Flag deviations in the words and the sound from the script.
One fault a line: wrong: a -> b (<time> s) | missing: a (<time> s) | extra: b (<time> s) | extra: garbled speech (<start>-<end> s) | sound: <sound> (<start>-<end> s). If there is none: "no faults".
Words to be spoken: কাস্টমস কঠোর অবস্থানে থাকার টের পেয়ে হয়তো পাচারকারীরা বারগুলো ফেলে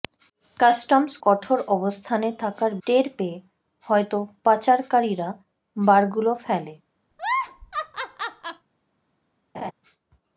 sound: laugh (7.1-8.7 s)
sound: laugh (9.5-9.7 s)